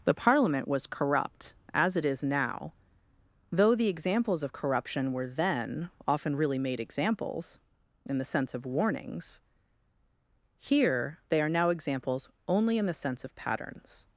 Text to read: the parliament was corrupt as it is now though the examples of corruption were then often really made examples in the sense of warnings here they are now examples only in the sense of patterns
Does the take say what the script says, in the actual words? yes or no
yes